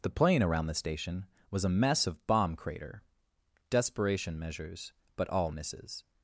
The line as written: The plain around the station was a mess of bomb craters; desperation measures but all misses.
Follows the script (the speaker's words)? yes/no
no